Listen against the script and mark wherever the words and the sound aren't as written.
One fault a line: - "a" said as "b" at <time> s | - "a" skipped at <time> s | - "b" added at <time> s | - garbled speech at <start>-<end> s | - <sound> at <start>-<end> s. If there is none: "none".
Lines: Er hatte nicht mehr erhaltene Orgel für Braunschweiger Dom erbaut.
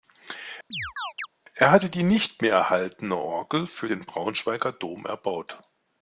- chirp at 0.7-1.3 s
- "die" added at 1.9 s
- "den" added at 3.8 s